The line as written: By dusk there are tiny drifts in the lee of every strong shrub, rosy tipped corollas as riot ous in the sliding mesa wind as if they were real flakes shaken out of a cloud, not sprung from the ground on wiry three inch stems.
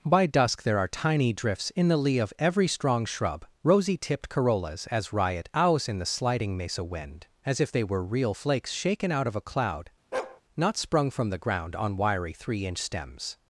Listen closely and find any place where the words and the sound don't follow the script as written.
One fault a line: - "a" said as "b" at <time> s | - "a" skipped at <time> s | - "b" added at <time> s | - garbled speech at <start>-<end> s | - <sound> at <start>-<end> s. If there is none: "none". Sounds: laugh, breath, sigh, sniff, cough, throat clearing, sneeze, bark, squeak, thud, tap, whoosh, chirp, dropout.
- "ous" said as "owls" at 5.5 s
- bark at 10.1-10.4 s